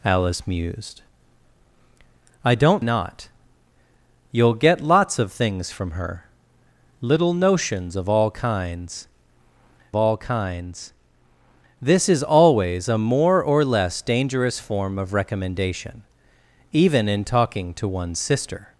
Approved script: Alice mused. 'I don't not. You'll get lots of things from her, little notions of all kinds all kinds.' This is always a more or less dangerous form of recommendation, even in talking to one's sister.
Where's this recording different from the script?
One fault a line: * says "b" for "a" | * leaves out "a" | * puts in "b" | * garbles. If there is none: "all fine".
all fine